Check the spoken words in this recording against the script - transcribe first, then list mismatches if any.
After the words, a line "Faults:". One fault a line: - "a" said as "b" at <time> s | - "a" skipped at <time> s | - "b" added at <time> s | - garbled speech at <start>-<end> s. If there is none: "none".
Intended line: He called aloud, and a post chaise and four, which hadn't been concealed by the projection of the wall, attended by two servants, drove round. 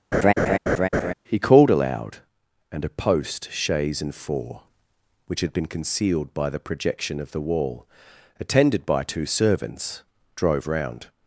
He called aloud, and a post chaise and four, which had been concealed by the projection of the wall, attended by two servants, drove round.
Faults:
- "hadn't" said as "had" at 5.4 s